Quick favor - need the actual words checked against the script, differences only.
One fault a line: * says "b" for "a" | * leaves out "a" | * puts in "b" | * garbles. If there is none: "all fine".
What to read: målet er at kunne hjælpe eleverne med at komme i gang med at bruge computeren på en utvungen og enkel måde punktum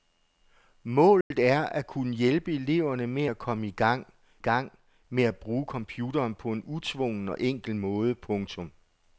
* puts in "gang"